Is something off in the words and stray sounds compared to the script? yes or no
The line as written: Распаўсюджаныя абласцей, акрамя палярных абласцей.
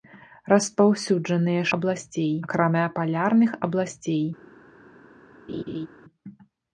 yes